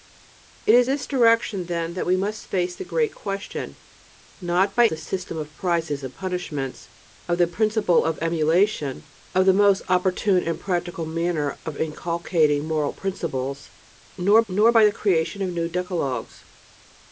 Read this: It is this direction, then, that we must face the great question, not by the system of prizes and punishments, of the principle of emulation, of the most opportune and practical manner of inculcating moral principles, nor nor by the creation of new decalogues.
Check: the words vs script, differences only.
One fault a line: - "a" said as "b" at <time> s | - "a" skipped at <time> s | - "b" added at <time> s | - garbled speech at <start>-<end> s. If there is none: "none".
none